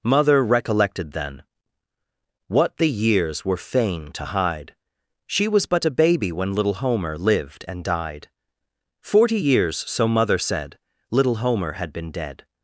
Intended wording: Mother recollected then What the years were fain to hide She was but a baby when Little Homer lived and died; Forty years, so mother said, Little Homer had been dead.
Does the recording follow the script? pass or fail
pass